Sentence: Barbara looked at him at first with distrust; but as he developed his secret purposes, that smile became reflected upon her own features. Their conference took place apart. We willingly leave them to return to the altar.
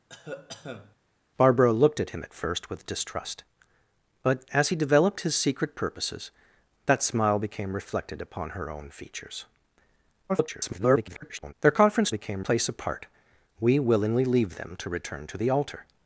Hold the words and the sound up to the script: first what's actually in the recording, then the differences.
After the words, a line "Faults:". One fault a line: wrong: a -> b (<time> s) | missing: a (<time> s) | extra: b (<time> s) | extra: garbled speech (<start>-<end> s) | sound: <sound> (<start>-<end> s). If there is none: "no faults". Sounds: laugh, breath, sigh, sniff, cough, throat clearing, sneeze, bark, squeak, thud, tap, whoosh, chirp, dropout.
Barbara looked at him at first with distrust; but as he developed his secret purposes, that smile became reflected upon her own features. [garbled] Their conference became place apart. We willingly leave them to return to the altar.
Faults:
sound: cough (0.1-1.0 s)
extra: garbled speech (10.3-11.5 s)
wrong: took -> became (12.1 s)